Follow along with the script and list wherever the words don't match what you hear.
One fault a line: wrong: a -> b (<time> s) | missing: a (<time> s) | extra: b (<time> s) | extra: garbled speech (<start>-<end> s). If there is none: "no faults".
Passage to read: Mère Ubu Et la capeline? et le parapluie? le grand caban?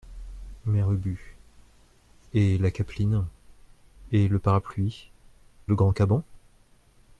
no faults